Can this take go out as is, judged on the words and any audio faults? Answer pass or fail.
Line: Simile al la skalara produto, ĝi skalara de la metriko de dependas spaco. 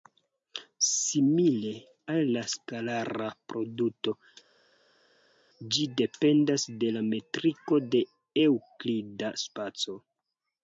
fail